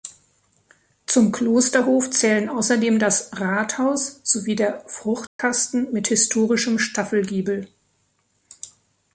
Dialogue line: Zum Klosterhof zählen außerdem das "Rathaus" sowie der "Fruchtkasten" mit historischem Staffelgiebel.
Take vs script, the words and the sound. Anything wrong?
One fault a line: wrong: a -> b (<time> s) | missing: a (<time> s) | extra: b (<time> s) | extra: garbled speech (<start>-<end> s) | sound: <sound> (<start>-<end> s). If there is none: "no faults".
sound: dropout (5.3-5.4 s)